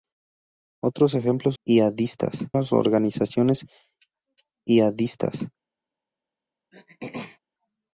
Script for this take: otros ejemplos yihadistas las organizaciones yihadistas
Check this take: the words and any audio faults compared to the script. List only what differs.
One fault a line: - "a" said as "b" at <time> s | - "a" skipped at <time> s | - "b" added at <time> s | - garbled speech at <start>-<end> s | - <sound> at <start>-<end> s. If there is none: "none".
- throat clearing at 6.7-7.4 s